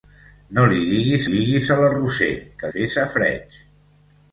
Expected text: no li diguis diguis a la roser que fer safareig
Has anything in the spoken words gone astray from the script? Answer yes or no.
no